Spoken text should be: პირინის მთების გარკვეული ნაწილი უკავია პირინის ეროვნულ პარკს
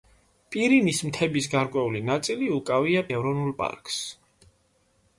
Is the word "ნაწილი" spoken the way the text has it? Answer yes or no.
yes